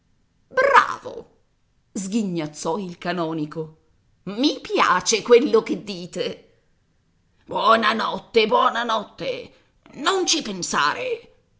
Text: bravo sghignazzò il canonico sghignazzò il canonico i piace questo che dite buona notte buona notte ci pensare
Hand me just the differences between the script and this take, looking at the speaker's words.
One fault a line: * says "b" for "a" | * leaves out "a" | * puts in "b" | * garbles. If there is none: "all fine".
* leaves out "sghignazzò il canonico"
* says "quello" for "questo"
* puts in "non"